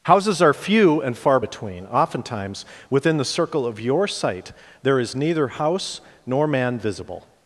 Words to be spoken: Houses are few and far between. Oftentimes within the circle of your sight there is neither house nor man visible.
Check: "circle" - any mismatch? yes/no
no